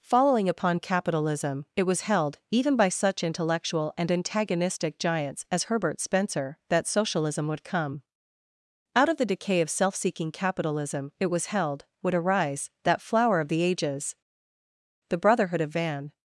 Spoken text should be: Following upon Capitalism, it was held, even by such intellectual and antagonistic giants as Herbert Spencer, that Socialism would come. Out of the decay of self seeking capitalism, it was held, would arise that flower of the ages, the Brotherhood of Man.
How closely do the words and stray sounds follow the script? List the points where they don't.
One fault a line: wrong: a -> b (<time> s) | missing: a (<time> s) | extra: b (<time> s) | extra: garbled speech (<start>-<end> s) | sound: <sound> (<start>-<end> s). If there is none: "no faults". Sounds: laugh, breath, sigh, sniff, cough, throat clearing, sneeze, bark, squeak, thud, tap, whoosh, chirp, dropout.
wrong: Man -> Van (15.7 s)